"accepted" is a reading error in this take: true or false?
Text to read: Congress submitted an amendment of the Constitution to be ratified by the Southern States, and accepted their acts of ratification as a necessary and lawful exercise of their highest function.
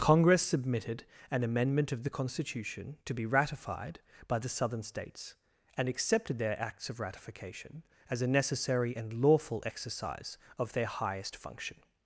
false